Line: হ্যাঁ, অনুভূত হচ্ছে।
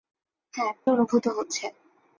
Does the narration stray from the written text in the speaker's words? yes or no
no